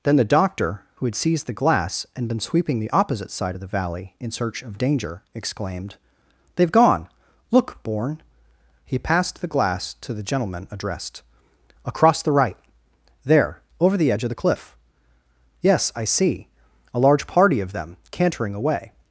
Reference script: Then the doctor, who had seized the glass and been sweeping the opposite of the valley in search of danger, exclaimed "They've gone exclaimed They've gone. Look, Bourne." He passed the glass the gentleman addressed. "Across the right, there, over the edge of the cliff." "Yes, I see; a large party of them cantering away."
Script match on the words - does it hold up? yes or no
no